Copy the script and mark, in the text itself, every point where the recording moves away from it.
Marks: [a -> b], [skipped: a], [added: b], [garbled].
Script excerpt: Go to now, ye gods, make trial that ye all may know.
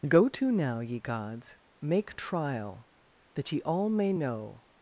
Go to now, ye gods, make trial that ye all may know.